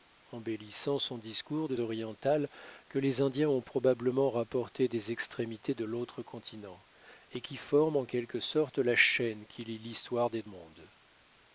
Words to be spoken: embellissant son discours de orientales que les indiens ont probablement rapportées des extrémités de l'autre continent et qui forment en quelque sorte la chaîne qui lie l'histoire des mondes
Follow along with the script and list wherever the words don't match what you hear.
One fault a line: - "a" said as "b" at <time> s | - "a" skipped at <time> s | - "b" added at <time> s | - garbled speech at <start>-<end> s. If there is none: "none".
none